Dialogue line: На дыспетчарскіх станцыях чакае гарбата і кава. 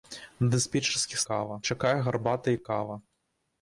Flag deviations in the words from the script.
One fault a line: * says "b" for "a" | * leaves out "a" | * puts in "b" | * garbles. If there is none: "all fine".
* says "кава" for "станцыях"